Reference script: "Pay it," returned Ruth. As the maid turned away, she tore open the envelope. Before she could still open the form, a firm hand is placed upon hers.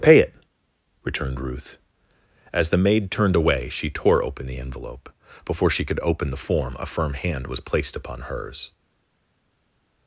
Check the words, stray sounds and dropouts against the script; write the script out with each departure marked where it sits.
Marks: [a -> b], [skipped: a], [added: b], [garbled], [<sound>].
"Pay it," returned Ruth. As the maid turned away, she tore open the envelope. Before she could [skipped: still] open the form, a firm hand [is -> was] placed upon hers.